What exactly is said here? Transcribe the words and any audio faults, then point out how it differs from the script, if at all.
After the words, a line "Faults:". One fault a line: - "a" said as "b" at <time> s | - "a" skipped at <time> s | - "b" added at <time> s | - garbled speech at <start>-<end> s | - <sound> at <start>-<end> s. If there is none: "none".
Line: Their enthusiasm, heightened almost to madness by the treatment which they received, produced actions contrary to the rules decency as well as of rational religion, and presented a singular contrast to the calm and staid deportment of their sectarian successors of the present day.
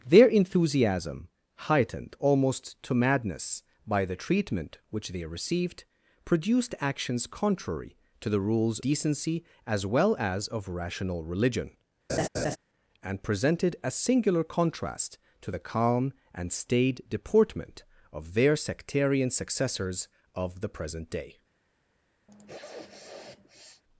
Their enthusiasm, heightened almost to madness by the treatment which they received, produced actions contrary to the rules decency as well as of rational religion, and presented a singular contrast to the calm and staid deportment of their sectarian successors of the present day.
Faults:
- laugh at 12.1-12.6 s
- sniff at 22.3-23.8 s